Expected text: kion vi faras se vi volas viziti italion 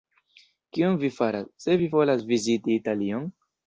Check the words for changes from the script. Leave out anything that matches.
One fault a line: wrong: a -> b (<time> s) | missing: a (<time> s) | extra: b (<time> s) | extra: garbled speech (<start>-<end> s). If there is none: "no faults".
no faults